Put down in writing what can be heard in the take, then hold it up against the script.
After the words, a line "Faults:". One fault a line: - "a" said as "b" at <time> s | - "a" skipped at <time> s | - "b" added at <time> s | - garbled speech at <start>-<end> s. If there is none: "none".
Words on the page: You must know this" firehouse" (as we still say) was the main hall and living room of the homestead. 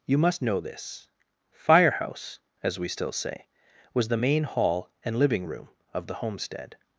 You must know this" firehouse" (as we still say) was the main hall and living room of the homestead.
Faults:
none